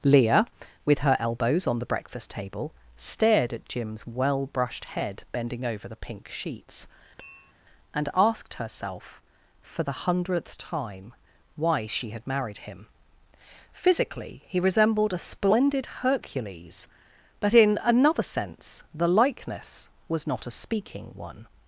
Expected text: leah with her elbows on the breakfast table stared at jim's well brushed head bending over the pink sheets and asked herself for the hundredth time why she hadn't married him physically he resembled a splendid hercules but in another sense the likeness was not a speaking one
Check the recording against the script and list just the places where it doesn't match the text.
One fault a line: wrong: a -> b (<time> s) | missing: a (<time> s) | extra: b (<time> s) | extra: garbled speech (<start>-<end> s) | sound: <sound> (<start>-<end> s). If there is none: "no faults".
sound: tap (7.2-7.5 s)
wrong: hadn't -> had (12.1 s)